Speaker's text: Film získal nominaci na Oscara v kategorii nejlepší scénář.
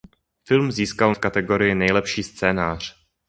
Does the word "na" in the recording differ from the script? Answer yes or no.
yes